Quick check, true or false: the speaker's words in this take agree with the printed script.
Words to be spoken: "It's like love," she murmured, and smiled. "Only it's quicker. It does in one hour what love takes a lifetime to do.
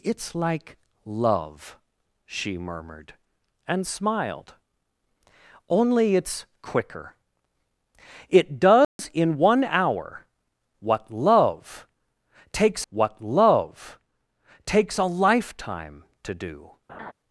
false